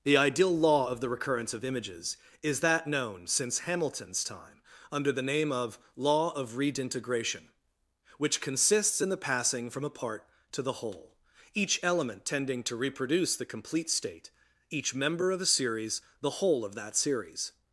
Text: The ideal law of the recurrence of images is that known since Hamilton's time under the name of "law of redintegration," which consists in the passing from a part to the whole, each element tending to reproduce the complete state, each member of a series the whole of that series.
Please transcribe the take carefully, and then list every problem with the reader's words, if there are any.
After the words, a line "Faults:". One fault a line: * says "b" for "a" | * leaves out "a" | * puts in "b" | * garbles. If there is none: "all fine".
The ideal law of the recurrence of images is that known since Hamilton's time under the name of "law of redintegration," which consists in the passing from a part to the whole, each element tending to reproduce the complete state, each member of a series the whole of that series.
Faults:
all fine